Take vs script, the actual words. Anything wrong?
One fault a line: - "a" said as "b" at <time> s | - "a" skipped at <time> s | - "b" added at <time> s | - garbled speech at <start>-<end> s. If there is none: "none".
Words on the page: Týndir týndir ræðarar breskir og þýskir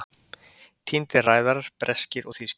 - "týndir" skipped at 1.3 s